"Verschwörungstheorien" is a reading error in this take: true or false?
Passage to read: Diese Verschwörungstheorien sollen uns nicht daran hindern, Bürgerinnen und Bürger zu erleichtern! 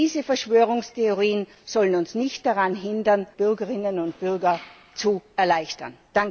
false